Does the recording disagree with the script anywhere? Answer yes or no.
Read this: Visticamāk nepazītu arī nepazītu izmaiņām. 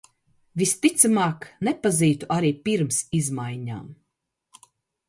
yes